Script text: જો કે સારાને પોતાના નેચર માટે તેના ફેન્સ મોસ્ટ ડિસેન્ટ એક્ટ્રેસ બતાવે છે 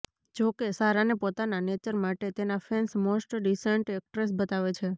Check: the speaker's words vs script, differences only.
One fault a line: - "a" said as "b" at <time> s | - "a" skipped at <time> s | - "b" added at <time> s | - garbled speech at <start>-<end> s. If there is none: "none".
none